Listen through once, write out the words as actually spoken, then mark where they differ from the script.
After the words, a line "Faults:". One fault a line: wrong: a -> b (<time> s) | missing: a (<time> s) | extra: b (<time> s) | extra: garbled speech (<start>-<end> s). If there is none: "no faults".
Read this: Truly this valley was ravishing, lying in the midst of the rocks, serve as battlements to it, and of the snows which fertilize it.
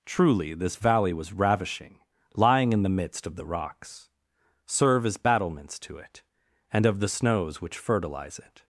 Truly this valley was ravishing, lying in the midst of the rocks, serve as battlements to it, and of the snows which fertilize it.
Faults:
no faults